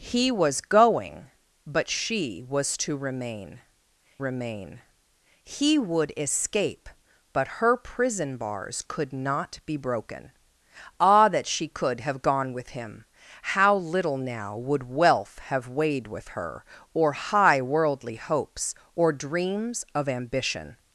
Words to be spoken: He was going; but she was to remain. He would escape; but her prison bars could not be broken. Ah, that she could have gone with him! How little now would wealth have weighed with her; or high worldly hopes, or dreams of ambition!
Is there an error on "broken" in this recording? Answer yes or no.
no